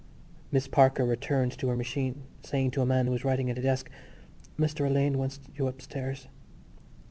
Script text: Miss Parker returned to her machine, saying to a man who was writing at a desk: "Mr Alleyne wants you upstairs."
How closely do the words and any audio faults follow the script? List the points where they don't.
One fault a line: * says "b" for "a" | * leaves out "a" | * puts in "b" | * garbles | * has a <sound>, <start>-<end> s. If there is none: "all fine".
all fine